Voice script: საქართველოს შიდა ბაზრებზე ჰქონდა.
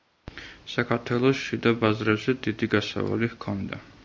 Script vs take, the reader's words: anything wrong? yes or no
yes